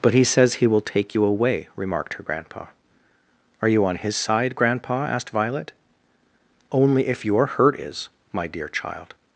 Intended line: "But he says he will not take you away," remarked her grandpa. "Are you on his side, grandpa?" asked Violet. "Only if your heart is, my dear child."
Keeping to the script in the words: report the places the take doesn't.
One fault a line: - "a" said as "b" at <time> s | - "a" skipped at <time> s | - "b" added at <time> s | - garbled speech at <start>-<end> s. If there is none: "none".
- "not" skipped at 0.8 s
- "heart" said as "hurt" at 7.4 s